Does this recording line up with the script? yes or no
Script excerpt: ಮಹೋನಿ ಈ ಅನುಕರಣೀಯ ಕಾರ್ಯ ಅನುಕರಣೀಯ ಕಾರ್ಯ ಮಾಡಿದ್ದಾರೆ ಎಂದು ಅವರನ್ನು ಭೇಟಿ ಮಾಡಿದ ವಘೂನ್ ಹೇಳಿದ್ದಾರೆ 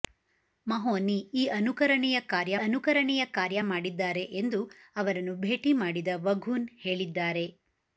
yes